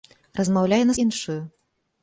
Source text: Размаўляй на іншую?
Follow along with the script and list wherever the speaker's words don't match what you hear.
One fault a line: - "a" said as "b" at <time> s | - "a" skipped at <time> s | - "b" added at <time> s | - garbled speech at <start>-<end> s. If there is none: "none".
none